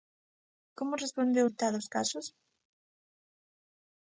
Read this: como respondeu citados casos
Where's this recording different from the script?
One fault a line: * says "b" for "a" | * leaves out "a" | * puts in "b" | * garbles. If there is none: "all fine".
all fine